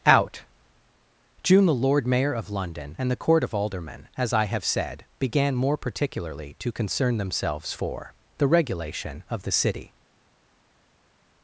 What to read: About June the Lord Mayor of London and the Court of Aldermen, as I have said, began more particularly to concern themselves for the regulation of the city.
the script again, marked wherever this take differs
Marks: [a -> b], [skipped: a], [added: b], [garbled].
[About -> Out] June the Lord Mayor of London and the Court of Aldermen, as I have said, began more particularly to concern themselves for the regulation of the city.